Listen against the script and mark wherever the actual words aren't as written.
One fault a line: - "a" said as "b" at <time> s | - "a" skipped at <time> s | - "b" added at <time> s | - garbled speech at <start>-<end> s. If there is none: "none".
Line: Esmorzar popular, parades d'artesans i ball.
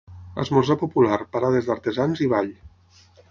none